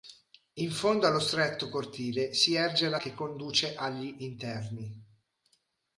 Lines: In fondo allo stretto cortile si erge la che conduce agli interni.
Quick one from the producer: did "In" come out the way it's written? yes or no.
yes